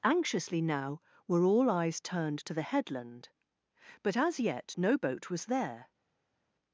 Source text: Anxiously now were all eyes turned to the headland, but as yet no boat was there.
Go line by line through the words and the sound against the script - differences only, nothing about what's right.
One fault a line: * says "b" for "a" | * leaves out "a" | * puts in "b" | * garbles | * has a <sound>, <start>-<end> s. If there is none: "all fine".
all fine